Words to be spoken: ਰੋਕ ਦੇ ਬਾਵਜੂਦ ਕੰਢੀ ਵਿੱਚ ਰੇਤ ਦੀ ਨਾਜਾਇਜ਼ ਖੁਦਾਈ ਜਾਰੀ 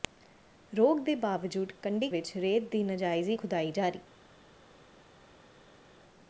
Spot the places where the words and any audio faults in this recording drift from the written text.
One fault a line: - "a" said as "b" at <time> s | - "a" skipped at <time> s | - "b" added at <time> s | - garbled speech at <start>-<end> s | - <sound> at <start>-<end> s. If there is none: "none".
none